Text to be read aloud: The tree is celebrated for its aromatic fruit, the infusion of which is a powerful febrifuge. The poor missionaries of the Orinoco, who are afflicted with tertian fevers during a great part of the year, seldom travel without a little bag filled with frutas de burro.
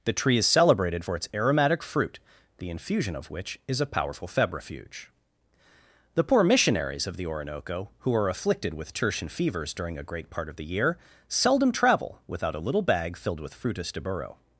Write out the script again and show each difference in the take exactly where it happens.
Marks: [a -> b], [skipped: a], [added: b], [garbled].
The tree is celebrated for its aromatic fruit, the infusion of which is a powerful febrifuge. The poor missionaries of the Orinoco, who are afflicted with tertian fevers during a great part of the year, seldom travel without a little bag filled with frutas de burro.